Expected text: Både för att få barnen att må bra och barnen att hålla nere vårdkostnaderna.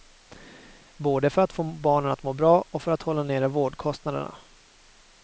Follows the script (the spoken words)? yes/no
no